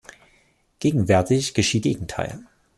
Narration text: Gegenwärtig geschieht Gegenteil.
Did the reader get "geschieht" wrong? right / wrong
right